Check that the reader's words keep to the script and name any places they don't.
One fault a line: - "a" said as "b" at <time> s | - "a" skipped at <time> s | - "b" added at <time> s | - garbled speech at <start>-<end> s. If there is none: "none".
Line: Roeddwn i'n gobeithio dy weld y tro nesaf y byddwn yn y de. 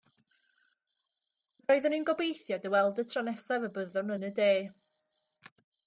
none